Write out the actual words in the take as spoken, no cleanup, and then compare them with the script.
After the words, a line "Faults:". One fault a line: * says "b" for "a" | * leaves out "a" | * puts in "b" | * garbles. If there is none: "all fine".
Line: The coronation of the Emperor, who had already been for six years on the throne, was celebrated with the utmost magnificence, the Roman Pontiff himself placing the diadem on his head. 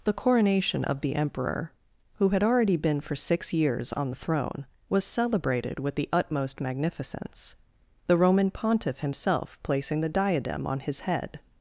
The coronation of the Emperor, who had already been for six years on the throne, was celebrated with the utmost magnificence, the Roman Pontiff himself placing the diadem on his head.
Faults:
all fine